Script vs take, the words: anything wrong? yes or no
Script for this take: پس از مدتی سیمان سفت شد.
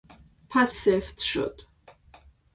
yes